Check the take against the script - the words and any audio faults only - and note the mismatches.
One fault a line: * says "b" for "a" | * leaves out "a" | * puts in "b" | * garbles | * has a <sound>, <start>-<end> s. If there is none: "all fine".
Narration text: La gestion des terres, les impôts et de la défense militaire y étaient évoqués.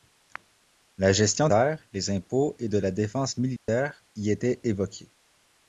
* leaves out "des"
* has a dropout, 3.6-3.7 s